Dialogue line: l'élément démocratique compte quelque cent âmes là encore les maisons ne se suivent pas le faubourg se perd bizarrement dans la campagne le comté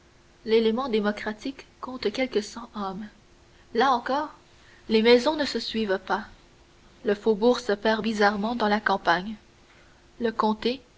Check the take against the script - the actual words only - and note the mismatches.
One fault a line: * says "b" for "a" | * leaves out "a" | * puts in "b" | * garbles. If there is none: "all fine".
all fine